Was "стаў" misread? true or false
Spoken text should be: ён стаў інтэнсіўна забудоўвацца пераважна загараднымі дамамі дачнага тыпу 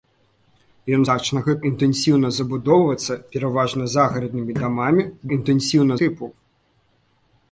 true